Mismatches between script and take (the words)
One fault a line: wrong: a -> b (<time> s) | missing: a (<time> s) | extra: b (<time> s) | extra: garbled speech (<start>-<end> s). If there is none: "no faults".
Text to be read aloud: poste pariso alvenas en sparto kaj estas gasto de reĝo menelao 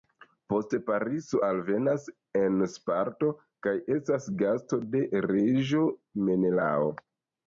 no faults